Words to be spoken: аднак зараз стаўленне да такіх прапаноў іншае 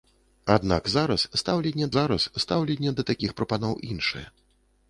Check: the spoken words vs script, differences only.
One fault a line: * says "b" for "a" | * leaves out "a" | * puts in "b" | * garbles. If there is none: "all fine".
* puts in "зараз стаўленне"